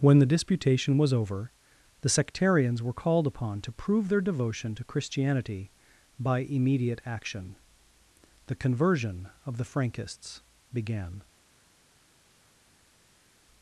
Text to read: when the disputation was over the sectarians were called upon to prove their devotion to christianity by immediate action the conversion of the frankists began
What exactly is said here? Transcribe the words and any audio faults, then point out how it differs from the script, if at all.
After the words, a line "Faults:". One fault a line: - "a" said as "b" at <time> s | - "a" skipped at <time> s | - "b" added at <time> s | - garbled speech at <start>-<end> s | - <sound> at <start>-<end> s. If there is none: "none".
when the disputation was over the sectarians were called upon to prove their devotion to christianity by immediate action the conversion of the frankists began
Faults:
none